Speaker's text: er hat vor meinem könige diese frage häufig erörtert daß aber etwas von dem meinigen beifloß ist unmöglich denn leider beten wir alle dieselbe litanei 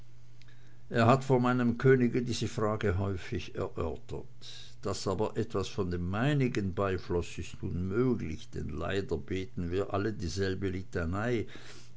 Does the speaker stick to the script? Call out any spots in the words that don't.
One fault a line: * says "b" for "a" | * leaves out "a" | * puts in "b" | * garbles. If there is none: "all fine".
all fine